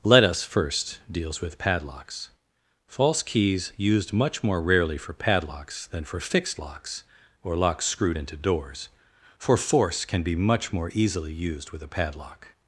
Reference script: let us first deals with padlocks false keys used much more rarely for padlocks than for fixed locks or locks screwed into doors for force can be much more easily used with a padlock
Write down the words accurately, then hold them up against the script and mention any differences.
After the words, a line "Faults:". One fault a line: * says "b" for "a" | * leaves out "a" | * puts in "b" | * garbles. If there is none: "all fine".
let us first deals with padlocks false keys used much more rarely for padlocks than for fixed locks or locks screwed into doors for force can be much more easily used with a padlock
Faults:
all fine